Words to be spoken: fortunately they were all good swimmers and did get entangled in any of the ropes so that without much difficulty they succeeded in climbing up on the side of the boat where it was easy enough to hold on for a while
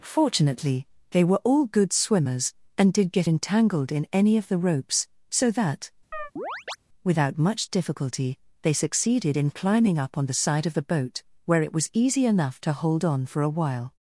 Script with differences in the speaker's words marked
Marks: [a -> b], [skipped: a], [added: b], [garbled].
fortunately they were all good swimmers and did get entangled in any of the ropes so that without much difficulty they succeeded in climbing up on the side of the boat where it was easy enough to hold on for a while